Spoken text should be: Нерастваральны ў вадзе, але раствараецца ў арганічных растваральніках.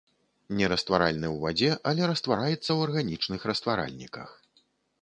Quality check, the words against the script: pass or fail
pass